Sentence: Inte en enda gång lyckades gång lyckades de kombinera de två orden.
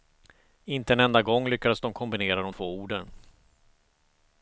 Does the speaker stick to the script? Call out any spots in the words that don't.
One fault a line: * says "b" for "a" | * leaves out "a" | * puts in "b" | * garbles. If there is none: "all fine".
* leaves out "gång lyckades"